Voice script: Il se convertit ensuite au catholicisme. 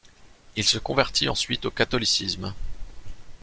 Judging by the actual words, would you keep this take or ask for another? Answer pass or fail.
pass